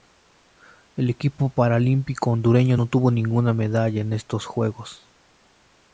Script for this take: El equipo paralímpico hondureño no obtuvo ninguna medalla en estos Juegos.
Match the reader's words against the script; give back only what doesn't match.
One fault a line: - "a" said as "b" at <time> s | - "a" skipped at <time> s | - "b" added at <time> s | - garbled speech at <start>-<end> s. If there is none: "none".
none